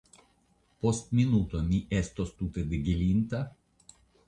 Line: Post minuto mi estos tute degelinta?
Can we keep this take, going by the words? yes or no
yes